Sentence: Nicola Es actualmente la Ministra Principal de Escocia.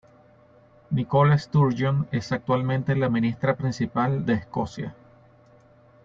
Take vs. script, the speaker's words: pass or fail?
fail